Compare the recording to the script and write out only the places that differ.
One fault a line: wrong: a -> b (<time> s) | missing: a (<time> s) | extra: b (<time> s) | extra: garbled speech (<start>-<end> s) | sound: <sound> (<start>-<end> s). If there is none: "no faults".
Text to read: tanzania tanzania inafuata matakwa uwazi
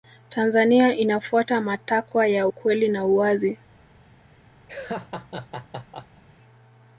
missing: tanzania (0.9 s)
extra: ya ukweli na (2.3 s)
sound: laugh (4.7-6.2 s)